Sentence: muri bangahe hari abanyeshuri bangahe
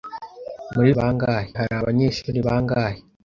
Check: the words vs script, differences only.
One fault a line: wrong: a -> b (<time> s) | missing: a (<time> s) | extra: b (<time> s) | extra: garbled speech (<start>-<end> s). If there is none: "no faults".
no faults